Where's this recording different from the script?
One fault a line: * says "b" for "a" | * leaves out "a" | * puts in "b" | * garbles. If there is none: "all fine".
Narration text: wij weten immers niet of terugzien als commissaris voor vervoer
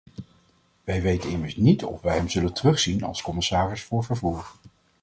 * puts in "wij hem zullen"